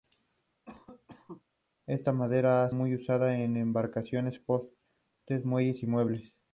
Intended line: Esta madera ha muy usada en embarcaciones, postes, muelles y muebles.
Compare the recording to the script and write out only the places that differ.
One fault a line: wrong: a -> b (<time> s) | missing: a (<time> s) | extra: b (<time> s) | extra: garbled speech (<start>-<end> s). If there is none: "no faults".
no faults